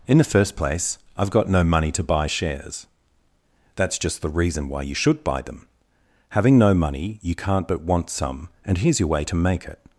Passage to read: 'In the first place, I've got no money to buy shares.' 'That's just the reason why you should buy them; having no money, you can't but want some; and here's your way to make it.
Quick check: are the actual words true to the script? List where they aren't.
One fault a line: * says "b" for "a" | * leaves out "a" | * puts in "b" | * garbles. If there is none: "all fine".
all fine